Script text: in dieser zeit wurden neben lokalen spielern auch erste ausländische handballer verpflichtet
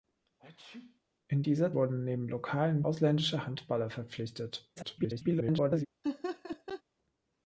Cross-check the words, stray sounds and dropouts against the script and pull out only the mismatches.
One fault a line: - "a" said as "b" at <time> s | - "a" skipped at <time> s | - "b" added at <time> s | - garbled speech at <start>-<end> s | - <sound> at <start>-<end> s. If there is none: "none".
- sneeze at 0.4-1.0 s
- "zeit" skipped at 1.7 s
- "spielern auch erste" skipped at 2.8 s
- garbled speech at 4.8-5.9 s
- laugh at 6.0-6.8 s